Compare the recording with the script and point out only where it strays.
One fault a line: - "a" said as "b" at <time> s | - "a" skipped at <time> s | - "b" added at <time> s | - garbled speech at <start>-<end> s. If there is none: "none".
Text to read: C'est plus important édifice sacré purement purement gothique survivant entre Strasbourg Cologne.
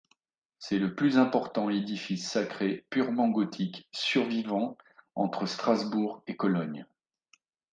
- "le" added at 0.8 s
- "purement" skipped at 3.3 s
- "et" added at 6.2 s